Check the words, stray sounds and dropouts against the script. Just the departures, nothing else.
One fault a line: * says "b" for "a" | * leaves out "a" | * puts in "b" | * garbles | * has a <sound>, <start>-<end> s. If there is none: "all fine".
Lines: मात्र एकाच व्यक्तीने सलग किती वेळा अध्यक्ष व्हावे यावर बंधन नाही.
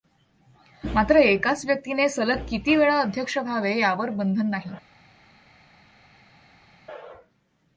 all fine